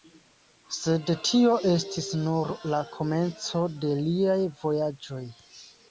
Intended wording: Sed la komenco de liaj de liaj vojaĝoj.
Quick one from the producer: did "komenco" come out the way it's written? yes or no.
yes